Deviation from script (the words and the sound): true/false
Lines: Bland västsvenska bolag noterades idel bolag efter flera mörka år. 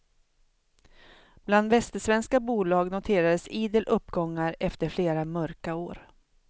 true